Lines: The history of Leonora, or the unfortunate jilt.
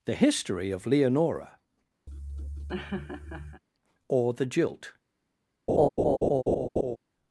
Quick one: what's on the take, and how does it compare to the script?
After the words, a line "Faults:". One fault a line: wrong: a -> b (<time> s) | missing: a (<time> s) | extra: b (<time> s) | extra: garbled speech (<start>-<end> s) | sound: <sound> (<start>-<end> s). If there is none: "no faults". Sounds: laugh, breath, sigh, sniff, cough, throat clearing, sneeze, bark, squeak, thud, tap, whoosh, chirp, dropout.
The history of Leonora, or the jilt.
Faults:
sound: laugh (2.1-3.6 s)
missing: unfortunate (4.4 s)
sound: laugh (5.7-7.0 s)